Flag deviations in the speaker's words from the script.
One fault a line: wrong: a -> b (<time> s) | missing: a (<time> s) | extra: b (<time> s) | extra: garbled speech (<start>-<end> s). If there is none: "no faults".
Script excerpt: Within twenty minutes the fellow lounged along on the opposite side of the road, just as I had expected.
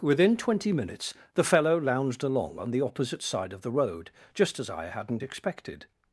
wrong: had -> hadn't (4.8 s)